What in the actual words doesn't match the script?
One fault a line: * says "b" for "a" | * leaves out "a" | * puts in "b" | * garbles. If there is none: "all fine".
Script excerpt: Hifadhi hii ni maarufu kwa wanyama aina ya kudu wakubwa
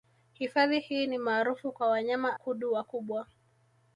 * leaves out "aina ya"